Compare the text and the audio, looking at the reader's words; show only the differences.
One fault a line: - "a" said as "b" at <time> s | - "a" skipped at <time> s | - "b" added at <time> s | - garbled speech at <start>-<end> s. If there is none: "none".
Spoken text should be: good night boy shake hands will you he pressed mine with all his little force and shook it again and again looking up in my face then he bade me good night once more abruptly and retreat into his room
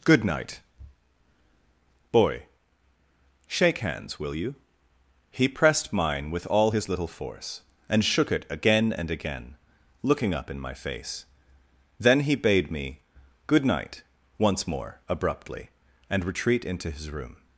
none